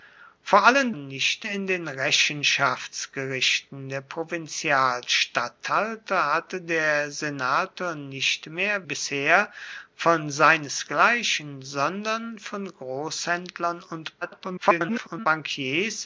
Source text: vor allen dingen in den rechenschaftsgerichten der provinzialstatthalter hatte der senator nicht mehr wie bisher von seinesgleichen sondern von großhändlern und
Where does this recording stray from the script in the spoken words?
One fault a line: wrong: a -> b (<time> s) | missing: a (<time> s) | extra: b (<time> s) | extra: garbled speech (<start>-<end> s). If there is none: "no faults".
wrong: dingen -> nicht (0.9 s)
missing: wie (8.9 s)
extra: garbled speech (14.2-15.3 s)